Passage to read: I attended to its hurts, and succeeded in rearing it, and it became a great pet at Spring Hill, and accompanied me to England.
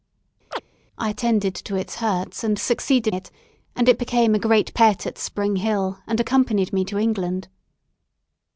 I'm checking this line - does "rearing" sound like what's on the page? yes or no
no